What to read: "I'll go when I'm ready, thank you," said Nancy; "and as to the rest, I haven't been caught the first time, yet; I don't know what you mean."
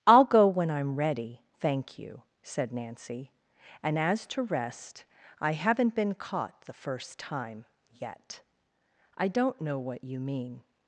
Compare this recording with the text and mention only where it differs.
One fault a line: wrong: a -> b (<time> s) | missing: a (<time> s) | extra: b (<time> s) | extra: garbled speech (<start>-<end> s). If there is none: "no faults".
missing: the (4.4 s)